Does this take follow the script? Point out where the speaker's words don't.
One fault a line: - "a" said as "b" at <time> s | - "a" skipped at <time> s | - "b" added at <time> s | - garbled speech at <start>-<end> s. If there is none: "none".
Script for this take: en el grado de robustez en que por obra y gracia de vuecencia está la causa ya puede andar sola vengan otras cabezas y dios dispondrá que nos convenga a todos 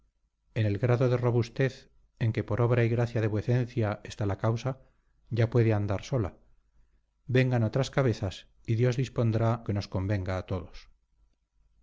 none